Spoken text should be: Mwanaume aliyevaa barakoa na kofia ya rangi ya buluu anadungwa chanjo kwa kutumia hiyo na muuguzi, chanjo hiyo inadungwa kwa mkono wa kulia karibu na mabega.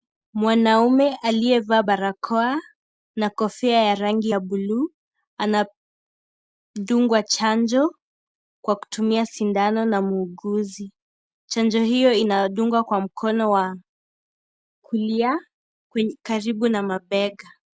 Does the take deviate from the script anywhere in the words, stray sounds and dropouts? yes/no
yes